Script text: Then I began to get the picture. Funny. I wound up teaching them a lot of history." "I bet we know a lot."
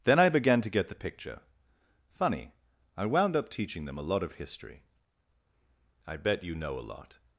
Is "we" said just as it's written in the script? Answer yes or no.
no